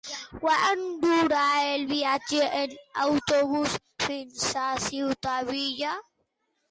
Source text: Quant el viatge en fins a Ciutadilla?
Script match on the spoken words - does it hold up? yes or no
no